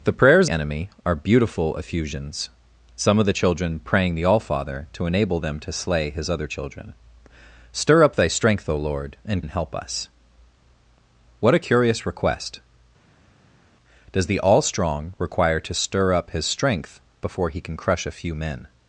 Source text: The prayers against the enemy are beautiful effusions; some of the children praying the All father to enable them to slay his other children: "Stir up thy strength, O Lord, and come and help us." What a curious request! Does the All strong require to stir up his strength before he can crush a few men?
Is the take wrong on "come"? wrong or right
wrong